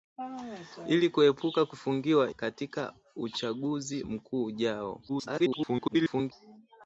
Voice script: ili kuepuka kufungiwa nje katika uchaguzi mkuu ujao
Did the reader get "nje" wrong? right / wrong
wrong